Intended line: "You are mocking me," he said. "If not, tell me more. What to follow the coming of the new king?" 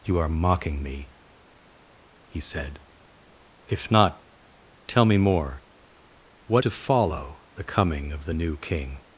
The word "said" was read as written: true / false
true